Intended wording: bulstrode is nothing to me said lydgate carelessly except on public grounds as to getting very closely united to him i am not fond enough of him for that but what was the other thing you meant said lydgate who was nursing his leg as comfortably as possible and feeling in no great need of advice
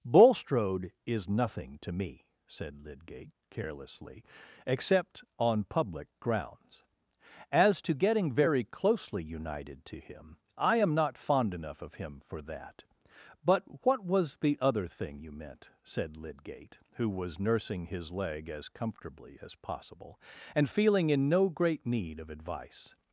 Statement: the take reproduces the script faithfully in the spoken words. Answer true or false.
true